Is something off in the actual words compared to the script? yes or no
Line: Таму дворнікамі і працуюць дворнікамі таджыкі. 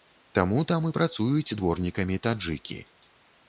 yes